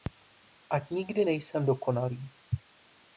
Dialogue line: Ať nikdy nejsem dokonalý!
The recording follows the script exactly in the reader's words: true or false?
true